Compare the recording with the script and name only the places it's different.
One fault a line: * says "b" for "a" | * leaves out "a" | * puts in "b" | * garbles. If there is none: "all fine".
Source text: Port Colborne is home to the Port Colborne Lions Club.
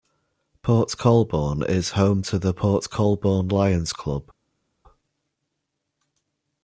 all fine